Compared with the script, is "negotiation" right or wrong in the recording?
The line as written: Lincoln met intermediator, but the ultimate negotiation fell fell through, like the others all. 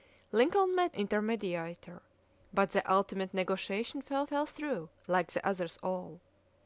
right